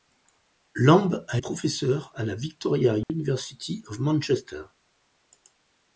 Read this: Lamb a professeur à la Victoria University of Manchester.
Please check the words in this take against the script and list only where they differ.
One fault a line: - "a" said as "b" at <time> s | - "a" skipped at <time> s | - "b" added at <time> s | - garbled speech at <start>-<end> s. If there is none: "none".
none